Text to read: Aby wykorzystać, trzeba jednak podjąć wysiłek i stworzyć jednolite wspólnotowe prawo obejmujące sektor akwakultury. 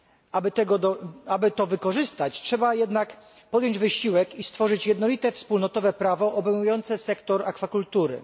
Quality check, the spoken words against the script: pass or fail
fail